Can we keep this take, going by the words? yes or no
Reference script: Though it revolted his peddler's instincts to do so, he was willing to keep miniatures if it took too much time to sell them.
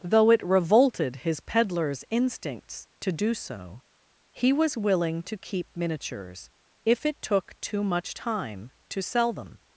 yes